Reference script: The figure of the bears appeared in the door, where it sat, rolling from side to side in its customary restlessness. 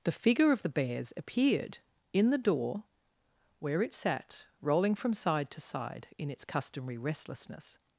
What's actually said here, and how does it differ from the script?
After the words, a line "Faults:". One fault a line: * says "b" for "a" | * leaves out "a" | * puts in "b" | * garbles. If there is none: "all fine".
The figure of the bears appeared in the door, where it sat, rolling from side to side in its customary restlessness.
Faults:
all fine